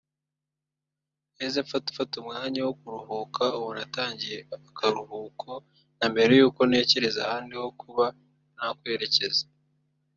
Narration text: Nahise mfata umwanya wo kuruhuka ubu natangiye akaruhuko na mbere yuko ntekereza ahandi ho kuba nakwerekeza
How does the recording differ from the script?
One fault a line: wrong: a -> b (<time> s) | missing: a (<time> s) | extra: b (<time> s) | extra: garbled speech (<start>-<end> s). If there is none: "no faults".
extra: mfata (1.9 s)